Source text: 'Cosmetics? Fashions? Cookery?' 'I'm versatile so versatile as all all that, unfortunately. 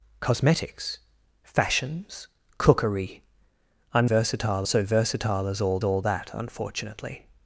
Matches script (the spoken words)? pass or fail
pass